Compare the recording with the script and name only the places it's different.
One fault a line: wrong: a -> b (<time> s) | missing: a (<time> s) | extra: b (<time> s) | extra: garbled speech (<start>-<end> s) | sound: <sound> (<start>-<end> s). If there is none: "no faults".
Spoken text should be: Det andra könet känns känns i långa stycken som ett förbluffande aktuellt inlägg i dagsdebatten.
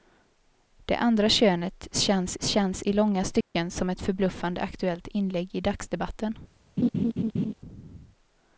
sound: dropout (3.4-3.5 s)
sound: laugh (6.8-7.5 s)